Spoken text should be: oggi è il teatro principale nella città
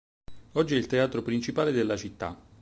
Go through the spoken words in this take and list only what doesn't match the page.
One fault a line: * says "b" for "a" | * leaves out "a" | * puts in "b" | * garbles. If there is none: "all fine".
* says "della" for "nella"